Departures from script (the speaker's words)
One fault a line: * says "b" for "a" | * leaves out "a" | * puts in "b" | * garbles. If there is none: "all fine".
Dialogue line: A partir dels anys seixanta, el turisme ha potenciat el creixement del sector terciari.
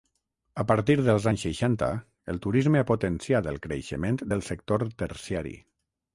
all fine